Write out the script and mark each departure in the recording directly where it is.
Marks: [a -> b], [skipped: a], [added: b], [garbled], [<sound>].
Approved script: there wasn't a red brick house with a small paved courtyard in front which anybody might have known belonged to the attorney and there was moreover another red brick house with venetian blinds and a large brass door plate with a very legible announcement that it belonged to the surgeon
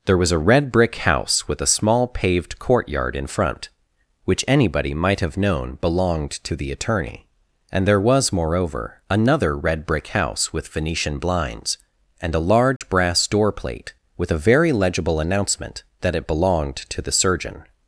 there [wasn't -> was] a red brick house with a small paved courtyard in front which anybody might have known belonged to the attorney and there was moreover another red brick house with venetian blinds and a large [dropout] brass door plate with a very legible announcement that it belonged to the surgeon